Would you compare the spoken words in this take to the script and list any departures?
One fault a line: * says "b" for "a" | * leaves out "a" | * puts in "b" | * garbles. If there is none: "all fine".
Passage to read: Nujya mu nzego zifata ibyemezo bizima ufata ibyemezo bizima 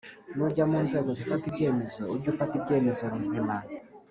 * says "ujye" for "bizima"